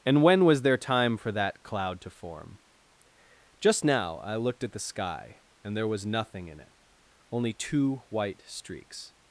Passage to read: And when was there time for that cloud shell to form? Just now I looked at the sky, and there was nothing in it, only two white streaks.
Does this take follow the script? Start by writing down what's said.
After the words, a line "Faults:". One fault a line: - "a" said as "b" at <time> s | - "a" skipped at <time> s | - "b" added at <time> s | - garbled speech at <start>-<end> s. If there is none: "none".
And when was there time for that cloud to form? Just now I looked at the sky, and there was nothing in it, only two white streaks.
Faults:
- "shell" skipped at 2.0 s